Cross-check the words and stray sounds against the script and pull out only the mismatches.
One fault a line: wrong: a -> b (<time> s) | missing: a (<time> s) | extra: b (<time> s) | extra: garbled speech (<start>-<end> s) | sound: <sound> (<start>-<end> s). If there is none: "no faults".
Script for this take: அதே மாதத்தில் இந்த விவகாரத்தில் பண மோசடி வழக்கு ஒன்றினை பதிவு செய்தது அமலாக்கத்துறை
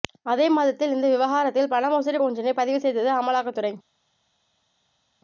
missing: வழக்கு (2.2 s)